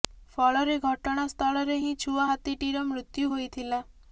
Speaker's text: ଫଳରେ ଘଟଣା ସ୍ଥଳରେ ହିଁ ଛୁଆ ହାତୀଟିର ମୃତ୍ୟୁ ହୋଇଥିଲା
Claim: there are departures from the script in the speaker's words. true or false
false